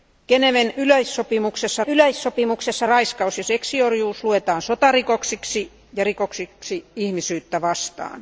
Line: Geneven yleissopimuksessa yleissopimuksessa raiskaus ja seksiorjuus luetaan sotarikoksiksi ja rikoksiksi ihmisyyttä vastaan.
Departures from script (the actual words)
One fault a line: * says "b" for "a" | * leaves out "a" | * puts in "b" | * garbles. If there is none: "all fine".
all fine